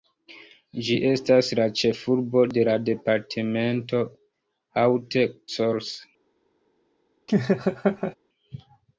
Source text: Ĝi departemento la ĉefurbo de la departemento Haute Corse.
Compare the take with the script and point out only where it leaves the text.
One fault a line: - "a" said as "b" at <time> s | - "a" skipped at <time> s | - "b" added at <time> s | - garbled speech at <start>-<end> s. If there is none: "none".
- "departemento" said as "estas" at 1.1 s